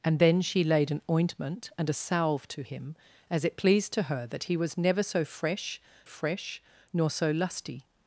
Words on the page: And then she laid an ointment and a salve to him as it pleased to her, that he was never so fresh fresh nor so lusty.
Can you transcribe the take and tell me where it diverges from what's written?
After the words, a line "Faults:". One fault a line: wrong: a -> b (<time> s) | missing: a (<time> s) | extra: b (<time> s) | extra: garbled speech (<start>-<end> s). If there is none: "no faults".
And then she laid an ointment and a salve to him as it pleased to her, that he was never so fresh fresh nor so lusty.
Faults:
no faults